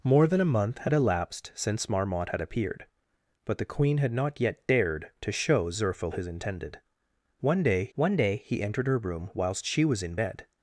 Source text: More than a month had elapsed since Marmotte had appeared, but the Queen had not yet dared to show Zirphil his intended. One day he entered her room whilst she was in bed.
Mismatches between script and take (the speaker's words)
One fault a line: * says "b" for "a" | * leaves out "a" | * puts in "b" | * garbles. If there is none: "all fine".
* puts in "one day"